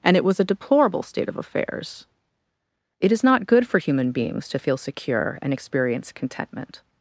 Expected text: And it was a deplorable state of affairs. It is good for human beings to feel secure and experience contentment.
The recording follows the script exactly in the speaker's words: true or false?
false